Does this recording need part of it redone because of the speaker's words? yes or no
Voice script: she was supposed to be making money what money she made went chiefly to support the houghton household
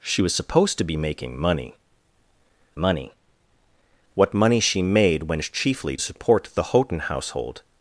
yes